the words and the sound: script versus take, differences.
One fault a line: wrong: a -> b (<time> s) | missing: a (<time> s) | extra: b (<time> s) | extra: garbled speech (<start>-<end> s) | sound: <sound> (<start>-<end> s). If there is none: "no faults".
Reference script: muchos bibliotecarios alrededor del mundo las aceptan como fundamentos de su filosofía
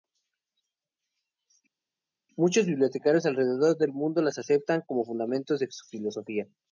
no faults